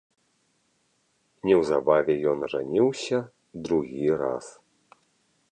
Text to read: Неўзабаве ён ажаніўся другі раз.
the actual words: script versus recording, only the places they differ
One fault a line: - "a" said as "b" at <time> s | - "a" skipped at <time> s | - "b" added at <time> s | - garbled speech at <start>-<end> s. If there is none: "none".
none